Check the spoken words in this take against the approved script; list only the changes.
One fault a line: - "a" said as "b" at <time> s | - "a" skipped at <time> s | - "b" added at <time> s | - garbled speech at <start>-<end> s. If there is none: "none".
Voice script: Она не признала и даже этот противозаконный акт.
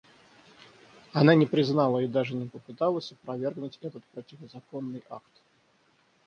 - "не попыталась опровергнуть" added at 2.3 s